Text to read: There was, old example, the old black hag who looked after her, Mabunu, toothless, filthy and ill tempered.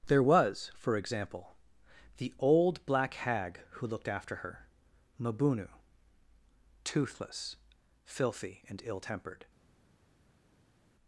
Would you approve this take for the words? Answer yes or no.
no